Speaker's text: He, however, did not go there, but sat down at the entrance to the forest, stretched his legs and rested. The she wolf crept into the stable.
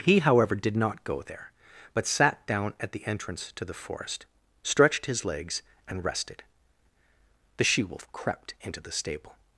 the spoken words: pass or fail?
pass